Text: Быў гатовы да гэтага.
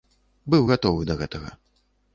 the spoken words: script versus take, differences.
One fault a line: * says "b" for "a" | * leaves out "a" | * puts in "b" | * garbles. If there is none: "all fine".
all fine